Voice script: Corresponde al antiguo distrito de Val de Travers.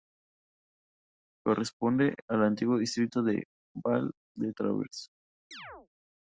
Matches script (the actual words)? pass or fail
pass